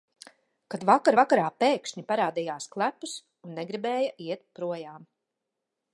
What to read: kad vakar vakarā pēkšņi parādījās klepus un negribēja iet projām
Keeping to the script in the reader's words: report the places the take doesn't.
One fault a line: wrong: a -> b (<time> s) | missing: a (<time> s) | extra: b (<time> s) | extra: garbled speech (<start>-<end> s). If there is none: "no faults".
no faults